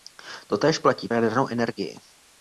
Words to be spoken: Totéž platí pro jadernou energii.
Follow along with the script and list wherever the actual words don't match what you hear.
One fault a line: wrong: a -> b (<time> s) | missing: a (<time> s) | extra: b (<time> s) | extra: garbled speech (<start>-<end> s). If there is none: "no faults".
missing: pro (1.1 s)